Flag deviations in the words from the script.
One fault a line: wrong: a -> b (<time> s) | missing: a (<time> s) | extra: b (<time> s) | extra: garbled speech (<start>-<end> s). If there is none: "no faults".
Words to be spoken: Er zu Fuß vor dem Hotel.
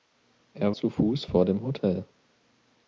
no faults